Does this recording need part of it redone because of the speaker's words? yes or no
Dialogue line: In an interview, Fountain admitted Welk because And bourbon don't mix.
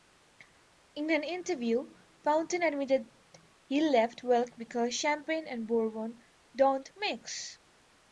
yes